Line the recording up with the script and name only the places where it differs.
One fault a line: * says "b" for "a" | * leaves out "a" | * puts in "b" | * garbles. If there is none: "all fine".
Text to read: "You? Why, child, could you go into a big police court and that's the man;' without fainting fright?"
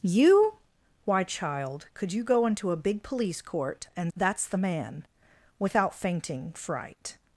all fine